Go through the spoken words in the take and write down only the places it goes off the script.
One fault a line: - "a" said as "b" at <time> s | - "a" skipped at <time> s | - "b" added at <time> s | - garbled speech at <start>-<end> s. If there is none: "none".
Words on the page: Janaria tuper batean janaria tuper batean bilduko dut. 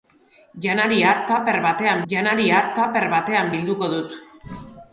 none